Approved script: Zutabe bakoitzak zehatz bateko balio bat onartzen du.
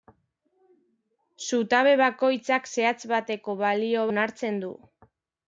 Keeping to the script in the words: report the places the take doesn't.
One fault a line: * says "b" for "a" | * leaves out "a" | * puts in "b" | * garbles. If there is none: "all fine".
* leaves out "bat"